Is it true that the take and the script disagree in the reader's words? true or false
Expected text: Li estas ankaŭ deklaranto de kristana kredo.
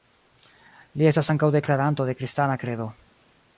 false